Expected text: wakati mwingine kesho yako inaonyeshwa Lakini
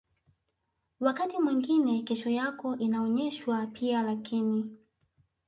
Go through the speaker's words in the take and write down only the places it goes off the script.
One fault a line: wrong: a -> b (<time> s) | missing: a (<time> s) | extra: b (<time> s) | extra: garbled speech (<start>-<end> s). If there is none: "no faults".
extra: pia (3.6 s)